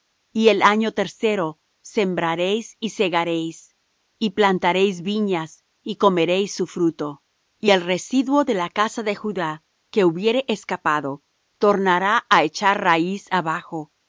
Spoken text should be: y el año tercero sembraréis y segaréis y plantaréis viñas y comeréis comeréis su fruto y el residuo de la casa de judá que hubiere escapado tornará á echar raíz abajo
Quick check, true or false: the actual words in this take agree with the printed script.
false